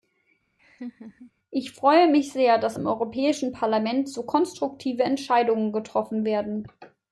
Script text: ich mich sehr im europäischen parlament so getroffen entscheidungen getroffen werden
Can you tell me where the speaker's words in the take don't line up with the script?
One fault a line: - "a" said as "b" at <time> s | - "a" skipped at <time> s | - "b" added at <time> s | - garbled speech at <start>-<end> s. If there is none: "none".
- "freue" added at 1.7 s
- "dass" added at 2.6 s
- "getroffen" said as "konstruktive" at 4.2 s